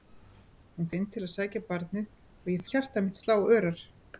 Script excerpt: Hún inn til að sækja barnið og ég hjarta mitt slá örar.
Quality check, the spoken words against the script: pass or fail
pass